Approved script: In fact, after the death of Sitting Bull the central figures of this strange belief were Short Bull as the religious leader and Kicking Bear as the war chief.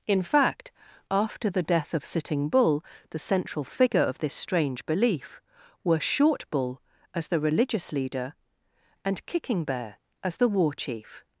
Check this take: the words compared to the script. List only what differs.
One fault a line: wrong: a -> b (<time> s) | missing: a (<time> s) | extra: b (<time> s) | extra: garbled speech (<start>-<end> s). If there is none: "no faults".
wrong: figures -> figure (3.6 s)